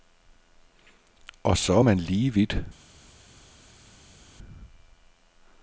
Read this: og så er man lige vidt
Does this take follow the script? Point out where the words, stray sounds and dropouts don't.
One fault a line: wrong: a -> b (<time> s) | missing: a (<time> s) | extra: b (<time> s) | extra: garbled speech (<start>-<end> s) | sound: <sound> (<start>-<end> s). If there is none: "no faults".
no faults